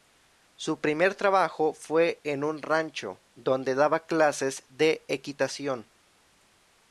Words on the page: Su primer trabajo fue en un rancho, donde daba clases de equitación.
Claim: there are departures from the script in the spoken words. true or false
false